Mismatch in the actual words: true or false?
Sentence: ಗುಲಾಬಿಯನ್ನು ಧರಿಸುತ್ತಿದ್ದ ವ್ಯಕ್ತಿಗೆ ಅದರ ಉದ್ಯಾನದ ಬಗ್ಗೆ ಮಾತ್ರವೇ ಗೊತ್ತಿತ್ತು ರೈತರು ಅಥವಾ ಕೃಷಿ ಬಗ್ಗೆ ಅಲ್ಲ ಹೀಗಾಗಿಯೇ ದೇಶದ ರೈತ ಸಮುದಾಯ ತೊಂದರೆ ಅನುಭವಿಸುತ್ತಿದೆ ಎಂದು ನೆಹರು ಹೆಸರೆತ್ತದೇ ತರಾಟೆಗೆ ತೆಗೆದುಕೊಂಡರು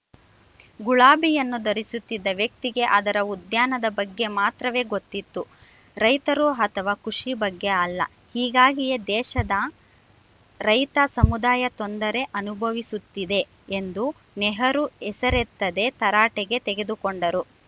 false